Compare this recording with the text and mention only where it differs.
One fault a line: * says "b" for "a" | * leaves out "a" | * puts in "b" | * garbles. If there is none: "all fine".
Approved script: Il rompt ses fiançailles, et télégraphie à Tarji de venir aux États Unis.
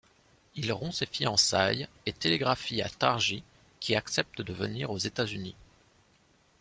* puts in "qui accepte"